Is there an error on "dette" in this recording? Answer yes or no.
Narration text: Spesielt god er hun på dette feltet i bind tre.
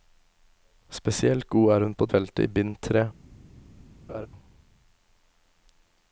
yes